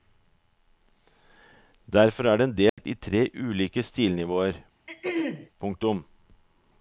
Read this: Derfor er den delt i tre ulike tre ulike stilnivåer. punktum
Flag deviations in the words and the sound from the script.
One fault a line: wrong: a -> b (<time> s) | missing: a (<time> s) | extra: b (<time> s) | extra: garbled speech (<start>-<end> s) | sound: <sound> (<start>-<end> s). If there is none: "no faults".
sound: dropout (2.7-2.8 s)
missing: tre ulike (3.8 s)
sound: throat clearing (4.9-5.5 s)